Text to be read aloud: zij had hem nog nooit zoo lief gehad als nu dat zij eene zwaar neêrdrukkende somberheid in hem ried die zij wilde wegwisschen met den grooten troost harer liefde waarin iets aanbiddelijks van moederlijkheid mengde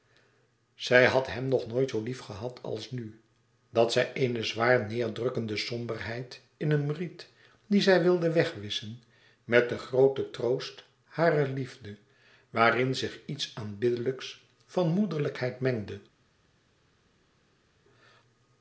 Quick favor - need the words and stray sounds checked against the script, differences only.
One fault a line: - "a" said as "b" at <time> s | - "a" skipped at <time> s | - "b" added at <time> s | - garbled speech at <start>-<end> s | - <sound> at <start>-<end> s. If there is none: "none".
- "zich" added at 12.9 s